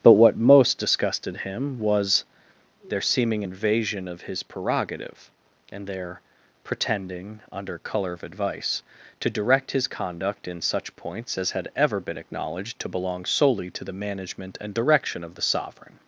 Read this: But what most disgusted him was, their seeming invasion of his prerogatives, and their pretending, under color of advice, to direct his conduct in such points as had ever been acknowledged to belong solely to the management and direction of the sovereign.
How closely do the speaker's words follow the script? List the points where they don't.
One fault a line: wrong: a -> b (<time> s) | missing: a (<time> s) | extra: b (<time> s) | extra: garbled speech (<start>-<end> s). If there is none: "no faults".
wrong: prerogatives -> prerogative (4.4 s)